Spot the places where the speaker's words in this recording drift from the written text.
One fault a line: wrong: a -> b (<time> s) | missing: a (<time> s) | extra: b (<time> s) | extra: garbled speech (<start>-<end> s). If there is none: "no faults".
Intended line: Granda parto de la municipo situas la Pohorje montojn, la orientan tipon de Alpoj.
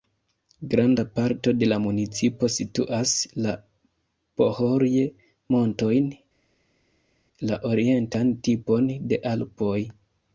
no faults